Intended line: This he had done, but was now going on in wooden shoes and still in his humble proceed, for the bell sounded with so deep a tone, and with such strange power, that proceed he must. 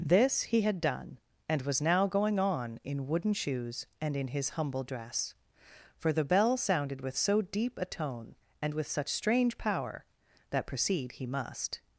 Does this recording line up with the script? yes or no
no